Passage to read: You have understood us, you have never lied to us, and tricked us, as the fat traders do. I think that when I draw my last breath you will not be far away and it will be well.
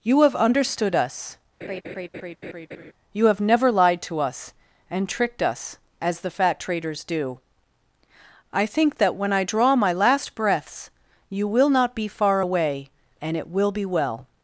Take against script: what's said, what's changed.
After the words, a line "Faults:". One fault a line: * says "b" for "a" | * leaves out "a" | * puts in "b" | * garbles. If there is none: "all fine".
You have understood us, you have never lied to us, and tricked us, as the fat traders do. I think that when I draw my last breaths you will not be far away and it will be well.
Faults:
* says "breaths" for "breath"